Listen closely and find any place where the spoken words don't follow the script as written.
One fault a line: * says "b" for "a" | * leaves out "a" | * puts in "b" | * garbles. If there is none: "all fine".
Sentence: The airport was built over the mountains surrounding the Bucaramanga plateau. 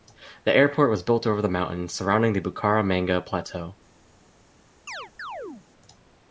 all fine